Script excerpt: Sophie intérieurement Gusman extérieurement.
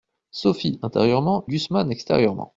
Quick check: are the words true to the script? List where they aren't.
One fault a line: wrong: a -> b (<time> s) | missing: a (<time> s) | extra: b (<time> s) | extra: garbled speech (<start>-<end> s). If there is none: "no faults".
no faults